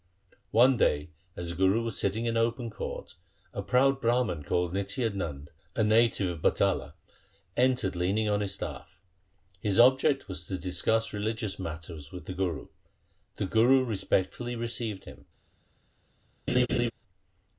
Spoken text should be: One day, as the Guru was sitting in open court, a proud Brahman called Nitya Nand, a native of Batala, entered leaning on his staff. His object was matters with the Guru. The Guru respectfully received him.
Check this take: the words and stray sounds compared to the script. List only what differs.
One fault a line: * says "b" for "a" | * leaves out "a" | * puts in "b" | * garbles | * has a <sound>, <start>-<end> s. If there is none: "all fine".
* puts in "to discuss religious"
* has a laugh, 16.5-16.9 s